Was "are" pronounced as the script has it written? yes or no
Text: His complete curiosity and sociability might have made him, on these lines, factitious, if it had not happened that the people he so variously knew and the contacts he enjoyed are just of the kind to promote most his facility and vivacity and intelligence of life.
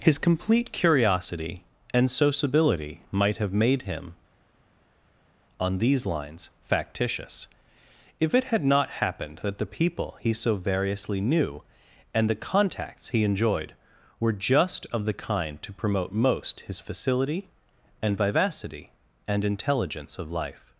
no